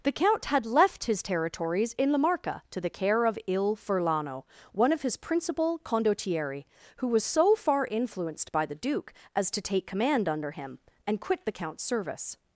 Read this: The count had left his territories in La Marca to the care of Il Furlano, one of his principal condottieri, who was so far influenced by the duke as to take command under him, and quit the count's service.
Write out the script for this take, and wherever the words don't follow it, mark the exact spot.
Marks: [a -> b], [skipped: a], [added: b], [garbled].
The count had left his territories in La Marca to the care of Il Furlano, one of his principal condottieri, who was so far influenced by the duke as to take command under him, and quit the count's service.